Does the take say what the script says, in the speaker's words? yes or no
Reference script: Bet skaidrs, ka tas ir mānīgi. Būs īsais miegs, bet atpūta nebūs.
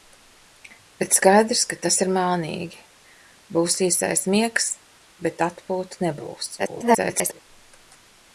no